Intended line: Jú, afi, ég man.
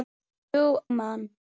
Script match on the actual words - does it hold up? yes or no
no